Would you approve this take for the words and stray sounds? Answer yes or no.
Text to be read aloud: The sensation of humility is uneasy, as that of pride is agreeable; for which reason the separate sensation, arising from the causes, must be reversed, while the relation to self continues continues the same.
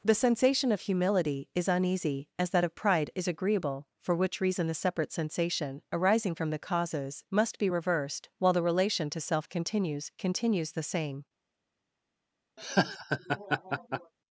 no